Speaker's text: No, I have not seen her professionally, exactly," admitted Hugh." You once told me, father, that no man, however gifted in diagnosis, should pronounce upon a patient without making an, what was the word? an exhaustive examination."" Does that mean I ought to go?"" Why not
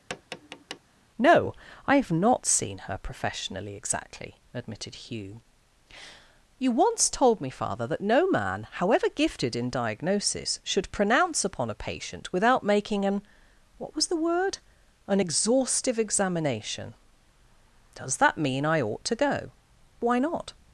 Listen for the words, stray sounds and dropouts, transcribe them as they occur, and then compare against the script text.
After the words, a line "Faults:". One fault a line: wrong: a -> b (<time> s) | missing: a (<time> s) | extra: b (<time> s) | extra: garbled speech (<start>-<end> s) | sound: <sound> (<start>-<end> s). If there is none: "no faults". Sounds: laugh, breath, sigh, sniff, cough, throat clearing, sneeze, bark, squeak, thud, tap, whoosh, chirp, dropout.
No, I have not seen her professionally, exactly," admitted Hugh." You once told me, father, that no man, however gifted in diagnosis, should pronounce upon a patient without making an, what was the word? an exhaustive examination."" Does that mean I ought to go?"" Why not
Faults:
sound: tap (0.1-0.8 s)